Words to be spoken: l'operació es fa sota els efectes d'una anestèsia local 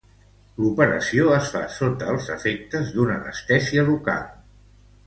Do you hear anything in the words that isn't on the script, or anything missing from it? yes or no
no